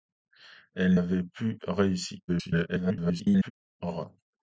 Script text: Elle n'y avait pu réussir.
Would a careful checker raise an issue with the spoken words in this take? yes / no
yes